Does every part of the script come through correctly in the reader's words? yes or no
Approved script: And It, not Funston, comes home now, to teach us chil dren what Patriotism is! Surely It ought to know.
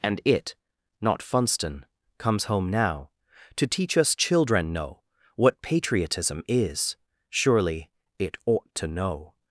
no